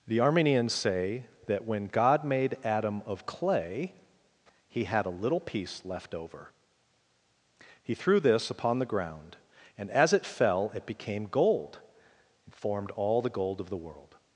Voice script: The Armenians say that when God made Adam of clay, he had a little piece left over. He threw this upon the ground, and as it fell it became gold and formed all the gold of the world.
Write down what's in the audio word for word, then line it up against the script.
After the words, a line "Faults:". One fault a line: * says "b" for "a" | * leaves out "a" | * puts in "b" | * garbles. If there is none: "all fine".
The Armenians say that when God made Adam of clay, he had a little piece left over. He threw this upon the ground, and as it fell it became gold and formed all the gold of the world.
Faults:
all fine